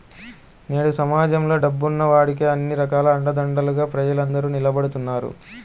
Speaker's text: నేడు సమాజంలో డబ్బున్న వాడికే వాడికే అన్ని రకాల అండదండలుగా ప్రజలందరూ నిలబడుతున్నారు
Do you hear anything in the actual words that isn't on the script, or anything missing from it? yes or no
yes